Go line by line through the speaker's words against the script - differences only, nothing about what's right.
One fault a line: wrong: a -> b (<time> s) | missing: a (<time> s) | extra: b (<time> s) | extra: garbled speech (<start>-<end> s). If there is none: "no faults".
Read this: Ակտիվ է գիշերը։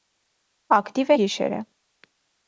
no faults